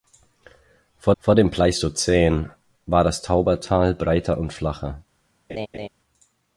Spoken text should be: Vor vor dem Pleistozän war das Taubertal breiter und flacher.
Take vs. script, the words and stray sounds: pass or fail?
fail